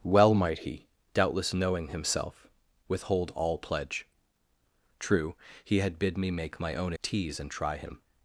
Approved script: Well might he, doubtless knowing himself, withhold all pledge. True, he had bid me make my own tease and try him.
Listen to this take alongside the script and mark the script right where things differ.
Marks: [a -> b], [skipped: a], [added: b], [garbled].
Well might he, doubtless knowing himself, withhold all pledge. True, he had bid me make my own tease and try him.